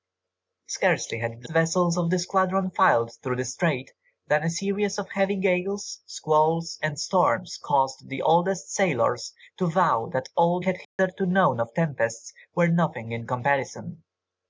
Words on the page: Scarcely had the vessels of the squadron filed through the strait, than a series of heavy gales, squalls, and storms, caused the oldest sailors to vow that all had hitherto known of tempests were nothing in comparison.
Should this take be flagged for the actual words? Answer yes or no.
no